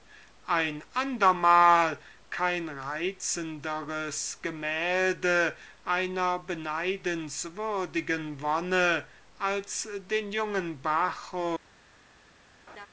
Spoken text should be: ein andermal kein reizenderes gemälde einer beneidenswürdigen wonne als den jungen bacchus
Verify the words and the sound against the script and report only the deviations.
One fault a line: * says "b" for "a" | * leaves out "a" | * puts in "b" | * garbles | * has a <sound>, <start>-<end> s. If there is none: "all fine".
* has a laugh, 12.7-12.9 s